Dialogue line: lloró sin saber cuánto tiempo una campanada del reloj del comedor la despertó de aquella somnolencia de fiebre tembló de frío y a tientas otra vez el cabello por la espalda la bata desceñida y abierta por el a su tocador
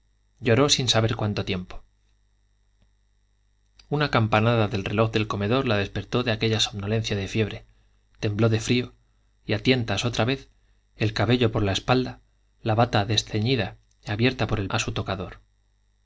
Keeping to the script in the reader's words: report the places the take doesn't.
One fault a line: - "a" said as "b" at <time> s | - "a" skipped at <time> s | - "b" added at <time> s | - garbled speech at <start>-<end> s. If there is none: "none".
none